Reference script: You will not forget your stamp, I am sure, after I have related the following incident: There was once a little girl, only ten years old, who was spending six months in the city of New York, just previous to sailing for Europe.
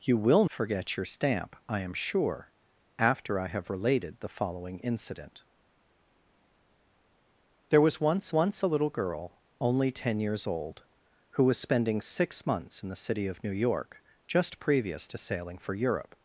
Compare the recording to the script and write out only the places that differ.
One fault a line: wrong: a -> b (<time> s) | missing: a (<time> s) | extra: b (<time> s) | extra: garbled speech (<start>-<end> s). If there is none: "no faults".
missing: not (0.5 s)
extra: once (8.3 s)